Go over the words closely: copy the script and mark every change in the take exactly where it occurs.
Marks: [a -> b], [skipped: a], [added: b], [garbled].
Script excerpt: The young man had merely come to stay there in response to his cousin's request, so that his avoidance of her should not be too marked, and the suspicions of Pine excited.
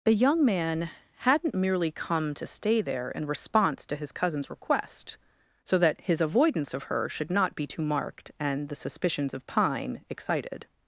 The young man [had -> hadn't] merely come to stay there in response to his cousin's request, so that his avoidance of her should not be too marked, and the suspicions of Pine excited.